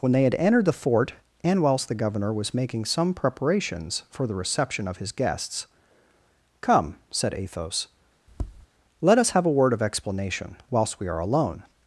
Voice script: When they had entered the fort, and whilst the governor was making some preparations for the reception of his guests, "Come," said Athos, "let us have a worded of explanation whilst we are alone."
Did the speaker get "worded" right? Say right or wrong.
wrong